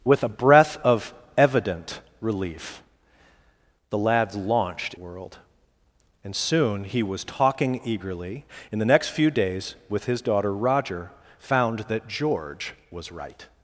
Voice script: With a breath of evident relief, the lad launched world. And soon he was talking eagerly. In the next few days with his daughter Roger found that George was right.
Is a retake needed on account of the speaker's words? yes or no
no